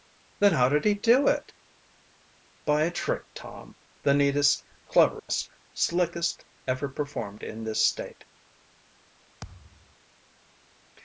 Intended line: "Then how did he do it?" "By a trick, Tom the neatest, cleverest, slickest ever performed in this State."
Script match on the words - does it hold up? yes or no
yes